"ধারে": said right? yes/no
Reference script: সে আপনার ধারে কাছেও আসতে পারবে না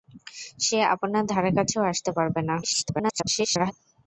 yes